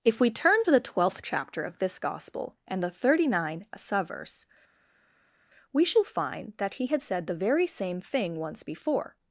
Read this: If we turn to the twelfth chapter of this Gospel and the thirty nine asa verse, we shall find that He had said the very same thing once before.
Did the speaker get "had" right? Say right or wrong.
right